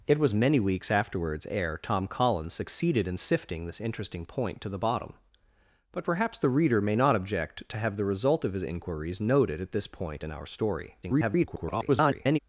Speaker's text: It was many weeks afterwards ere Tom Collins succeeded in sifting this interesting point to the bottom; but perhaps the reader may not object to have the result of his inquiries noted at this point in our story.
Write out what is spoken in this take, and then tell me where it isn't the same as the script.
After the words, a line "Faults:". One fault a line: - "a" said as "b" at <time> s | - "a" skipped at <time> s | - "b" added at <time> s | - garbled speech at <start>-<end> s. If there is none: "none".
It was many weeks afterwards ere Tom Collins succeeded in sifting this interesting point to the bottom; but perhaps the reader may not object to have the result of his inquiries noted at this point in our story. [garbled]
Faults:
- garbled speech at 11.0-12.4 s